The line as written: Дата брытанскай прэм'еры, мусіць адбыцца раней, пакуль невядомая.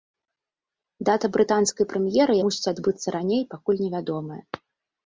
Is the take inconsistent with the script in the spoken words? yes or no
no